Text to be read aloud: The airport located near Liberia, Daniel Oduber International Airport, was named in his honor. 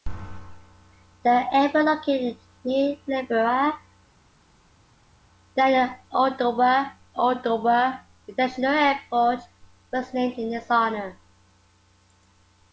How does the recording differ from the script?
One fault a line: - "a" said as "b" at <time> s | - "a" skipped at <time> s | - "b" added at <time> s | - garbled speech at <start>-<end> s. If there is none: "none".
- "Oduber" added at 7.2 s